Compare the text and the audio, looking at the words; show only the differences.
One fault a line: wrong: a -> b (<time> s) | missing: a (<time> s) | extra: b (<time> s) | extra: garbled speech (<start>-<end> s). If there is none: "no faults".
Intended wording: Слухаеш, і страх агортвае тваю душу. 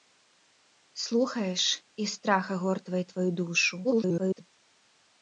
extra: garbled speech (3.8-4.4 s)